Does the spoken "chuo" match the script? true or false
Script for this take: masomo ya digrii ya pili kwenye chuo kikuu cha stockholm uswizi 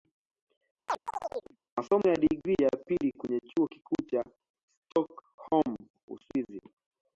true